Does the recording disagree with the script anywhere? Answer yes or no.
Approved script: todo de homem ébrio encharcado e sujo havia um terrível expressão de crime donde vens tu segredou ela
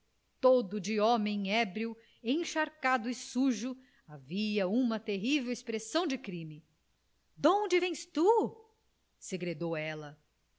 yes